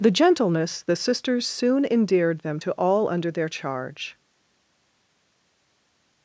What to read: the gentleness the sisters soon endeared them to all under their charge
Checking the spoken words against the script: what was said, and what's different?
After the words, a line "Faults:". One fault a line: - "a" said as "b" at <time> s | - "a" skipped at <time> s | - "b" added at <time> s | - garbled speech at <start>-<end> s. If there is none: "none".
the gentleness the sisters soon endeared them to all under their charge
Faults:
none